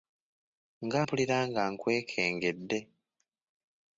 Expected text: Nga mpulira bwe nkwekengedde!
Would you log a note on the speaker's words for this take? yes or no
yes